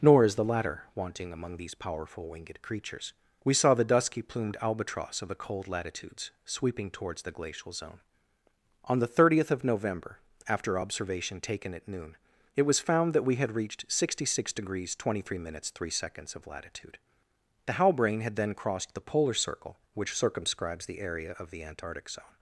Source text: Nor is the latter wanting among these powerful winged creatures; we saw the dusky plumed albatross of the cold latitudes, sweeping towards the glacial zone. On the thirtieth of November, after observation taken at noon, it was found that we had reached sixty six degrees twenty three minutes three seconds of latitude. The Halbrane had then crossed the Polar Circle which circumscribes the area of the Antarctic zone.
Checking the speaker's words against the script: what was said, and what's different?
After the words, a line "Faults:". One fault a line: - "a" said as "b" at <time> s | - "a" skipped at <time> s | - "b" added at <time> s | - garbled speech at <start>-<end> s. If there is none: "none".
Nor is the latter wanting among these powerful winged creatures; we saw the dusky plumed albatross of the cold latitudes, sweeping towards the glacial zone. On the thirtieth of November, after observation taken at noon, it was found that we had reached sixty six degrees twenty three minutes three seconds of latitude. The Halbrane had then crossed the Polar Circle which circumscribes the area of the Antarctic zone.
Faults:
none